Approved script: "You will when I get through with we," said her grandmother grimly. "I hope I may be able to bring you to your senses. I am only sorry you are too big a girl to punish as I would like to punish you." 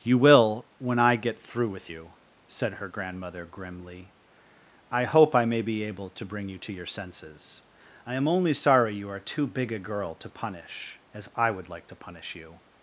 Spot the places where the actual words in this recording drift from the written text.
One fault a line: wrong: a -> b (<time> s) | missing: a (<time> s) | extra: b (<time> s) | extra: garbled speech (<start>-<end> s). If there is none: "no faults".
wrong: we -> you (1.9 s)